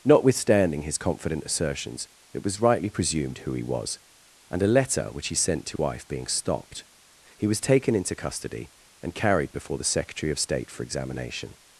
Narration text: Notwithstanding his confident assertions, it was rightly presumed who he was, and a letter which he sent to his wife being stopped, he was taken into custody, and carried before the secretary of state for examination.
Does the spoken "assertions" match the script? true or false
true